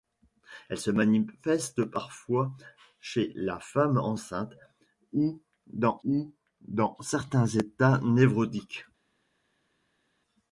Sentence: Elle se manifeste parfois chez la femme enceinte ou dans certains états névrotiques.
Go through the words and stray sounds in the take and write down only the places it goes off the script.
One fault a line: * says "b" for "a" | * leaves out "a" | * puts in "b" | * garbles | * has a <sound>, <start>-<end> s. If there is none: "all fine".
* puts in "ou dans"